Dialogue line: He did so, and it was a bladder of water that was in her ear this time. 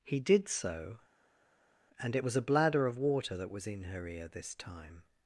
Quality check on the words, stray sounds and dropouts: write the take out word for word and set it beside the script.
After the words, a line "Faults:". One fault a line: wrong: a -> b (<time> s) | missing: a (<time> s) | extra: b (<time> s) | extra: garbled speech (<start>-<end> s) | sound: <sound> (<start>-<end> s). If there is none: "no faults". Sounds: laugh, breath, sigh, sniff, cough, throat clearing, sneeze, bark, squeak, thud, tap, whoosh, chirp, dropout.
He did so, and it was a bladder of water that was in her ear this time.
Faults:
no faults